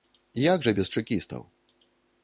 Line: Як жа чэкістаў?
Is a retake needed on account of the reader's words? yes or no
yes